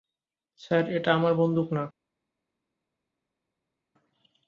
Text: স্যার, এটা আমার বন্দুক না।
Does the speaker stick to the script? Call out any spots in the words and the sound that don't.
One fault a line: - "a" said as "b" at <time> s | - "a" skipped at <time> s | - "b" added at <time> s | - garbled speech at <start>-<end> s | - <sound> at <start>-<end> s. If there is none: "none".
none